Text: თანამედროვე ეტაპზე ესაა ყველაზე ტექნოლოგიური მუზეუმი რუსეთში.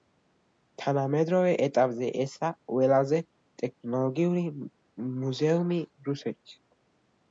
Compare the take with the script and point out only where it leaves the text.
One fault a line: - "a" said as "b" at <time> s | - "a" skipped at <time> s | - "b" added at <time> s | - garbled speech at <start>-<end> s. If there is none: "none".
none